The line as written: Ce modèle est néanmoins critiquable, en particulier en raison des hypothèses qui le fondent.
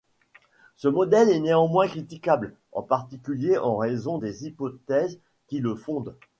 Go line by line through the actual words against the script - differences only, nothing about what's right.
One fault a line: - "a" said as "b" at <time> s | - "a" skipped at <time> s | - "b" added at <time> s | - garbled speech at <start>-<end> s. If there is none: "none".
none